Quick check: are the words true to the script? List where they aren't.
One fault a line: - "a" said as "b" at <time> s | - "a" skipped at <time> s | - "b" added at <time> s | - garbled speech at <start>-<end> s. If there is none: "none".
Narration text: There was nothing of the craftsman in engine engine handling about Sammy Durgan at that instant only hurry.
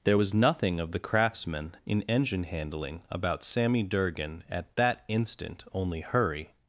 - "engine" skipped at 2.4 s